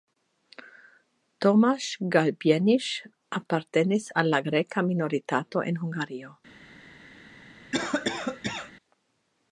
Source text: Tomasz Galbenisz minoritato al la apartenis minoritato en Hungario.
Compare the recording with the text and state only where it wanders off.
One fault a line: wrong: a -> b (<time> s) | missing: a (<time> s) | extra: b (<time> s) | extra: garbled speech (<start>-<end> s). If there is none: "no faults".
wrong: minoritato -> apartenis (3.4 s)
wrong: apartenis -> greka (4.5 s)